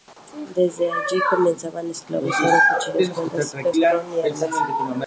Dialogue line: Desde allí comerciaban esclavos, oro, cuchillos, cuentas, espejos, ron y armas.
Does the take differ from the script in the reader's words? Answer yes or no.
yes